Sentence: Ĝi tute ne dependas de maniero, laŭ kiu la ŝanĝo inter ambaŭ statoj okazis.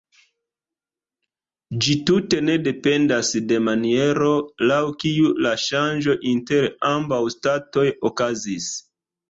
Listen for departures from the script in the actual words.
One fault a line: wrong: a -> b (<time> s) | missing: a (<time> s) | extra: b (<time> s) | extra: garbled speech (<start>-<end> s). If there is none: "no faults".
no faults